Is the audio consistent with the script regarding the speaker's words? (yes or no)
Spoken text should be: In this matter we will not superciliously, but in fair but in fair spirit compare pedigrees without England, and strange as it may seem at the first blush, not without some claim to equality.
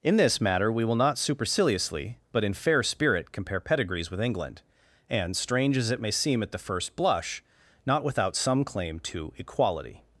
no